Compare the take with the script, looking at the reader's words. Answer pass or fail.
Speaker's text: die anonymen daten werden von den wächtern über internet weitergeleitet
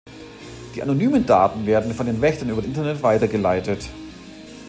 pass